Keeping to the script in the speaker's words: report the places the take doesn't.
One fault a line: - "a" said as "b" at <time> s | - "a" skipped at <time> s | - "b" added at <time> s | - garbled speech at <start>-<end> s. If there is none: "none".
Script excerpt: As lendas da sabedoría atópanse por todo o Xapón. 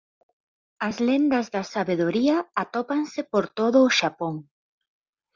none